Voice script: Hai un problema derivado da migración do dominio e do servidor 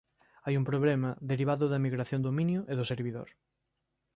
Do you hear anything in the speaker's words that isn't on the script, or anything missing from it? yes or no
yes